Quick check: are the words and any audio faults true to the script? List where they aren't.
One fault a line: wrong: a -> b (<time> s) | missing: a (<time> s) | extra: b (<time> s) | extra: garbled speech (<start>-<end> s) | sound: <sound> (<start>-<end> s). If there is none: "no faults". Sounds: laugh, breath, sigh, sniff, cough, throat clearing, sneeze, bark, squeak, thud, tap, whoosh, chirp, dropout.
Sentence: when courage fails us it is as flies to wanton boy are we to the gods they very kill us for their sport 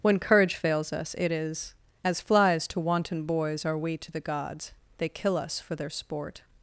wrong: boy -> boys (3.2 s)
missing: very (5.1 s)